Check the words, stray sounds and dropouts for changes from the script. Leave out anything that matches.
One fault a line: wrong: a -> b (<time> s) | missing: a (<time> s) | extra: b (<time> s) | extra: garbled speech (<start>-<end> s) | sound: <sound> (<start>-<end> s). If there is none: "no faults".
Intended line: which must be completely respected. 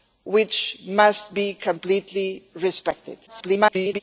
extra: garbled speech (3.3-4.0 s)